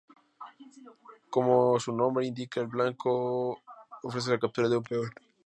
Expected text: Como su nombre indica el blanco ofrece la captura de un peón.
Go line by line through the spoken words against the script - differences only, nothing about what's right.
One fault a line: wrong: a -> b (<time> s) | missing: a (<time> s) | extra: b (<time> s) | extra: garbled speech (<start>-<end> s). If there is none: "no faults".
no faults